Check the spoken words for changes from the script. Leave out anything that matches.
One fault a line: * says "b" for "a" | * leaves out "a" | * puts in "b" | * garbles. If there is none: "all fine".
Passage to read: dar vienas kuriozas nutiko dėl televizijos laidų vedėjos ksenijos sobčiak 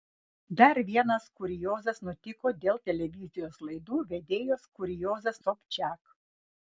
* says "kuriozas" for "ksenijos"